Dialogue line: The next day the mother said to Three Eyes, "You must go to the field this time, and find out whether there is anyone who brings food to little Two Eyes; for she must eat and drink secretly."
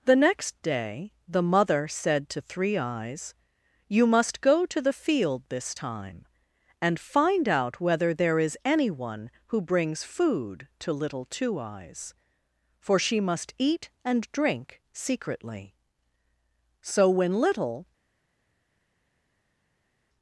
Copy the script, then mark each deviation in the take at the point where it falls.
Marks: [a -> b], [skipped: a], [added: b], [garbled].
The next day the mother said to Three Eyes, "You must go to the field this time, and find out whether there is anyone who brings food to little Two Eyes; for she must eat and drink secretly." [added: So when little]